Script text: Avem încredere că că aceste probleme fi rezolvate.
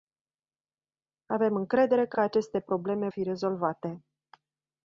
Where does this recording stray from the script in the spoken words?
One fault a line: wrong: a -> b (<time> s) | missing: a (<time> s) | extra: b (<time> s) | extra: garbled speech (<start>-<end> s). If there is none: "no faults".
no faults